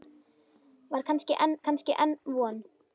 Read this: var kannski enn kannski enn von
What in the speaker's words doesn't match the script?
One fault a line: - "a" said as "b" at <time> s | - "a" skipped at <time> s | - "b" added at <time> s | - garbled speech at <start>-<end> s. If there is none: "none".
none